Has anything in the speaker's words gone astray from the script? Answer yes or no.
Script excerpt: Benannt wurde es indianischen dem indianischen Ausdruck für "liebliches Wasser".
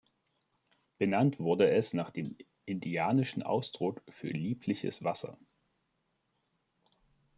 yes